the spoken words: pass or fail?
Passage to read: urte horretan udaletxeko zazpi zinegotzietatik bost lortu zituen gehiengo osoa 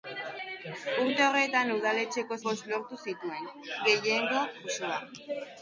fail